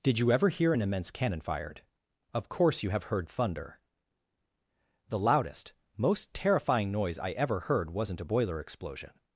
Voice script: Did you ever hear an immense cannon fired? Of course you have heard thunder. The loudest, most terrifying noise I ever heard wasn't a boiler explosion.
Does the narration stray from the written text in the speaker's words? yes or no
no